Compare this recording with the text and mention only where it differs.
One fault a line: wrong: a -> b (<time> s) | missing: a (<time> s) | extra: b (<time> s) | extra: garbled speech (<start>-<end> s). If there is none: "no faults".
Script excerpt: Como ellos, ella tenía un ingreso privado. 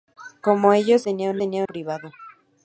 missing: ella (1.1 s)
wrong: ingreso -> tenía (1.3 s)